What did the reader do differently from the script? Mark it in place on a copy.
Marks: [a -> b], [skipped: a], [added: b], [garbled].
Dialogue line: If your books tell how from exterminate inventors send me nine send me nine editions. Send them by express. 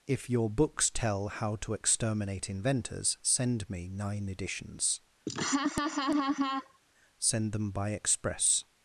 If your books tell how [from -> to] exterminate inventors send me nine [skipped: send me nine] editions. Send them by express.